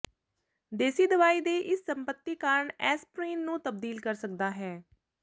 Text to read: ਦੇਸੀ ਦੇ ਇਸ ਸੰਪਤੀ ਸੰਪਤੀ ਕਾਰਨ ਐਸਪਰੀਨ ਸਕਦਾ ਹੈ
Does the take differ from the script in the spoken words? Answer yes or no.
yes